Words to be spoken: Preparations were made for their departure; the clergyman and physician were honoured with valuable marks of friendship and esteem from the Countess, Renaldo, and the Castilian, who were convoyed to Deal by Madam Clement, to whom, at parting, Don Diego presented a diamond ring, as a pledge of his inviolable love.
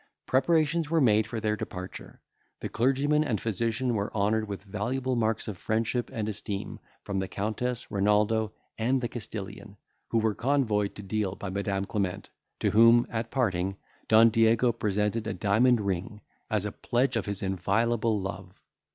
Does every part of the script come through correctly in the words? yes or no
yes